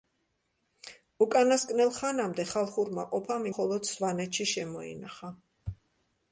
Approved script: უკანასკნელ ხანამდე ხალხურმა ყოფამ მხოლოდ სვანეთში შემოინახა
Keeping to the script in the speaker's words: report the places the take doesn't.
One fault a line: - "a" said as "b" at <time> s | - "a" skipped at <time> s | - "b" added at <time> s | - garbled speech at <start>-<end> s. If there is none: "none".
none